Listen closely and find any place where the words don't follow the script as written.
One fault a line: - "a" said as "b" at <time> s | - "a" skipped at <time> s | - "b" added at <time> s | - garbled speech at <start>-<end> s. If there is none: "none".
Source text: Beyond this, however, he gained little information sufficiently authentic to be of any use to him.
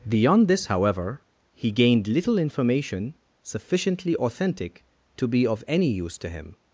none